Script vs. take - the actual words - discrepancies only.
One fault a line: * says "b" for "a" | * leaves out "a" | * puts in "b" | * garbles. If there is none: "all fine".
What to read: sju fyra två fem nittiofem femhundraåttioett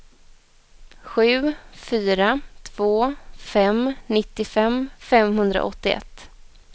all fine